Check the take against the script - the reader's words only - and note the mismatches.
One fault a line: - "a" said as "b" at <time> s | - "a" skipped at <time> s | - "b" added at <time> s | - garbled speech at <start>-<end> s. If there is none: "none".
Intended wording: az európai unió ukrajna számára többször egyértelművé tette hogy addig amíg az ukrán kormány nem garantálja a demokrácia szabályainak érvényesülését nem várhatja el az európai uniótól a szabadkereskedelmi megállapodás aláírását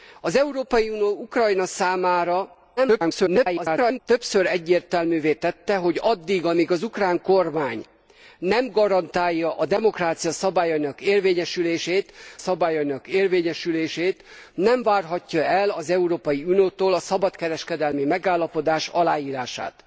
- garbled speech at 2.8-4.0 s
- "szabályainak érvényesülését" added at 12.4 s